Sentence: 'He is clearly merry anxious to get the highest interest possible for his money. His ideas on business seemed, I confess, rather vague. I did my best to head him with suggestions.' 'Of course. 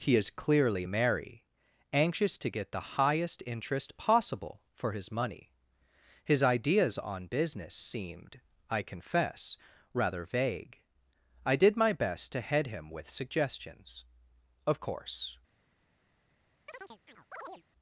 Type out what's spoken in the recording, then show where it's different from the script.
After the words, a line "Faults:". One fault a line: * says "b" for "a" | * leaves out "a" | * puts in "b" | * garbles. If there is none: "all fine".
'He is clearly merry anxious to get the highest interest possible for his money. His ideas on business seemed, I confess, rather vague. I did my best to head him with suggestions.' 'Of course.
Faults:
all fine